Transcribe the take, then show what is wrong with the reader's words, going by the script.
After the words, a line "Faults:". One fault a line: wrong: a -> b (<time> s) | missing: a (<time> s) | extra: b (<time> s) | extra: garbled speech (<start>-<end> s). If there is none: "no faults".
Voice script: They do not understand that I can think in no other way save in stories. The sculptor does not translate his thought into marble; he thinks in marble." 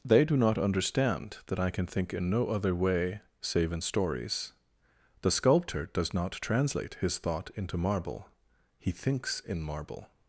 They do not understand that I can think in no other way save in stories. The sculptor does not translate his thought into marble; he thinks in marble."
Faults:
no faults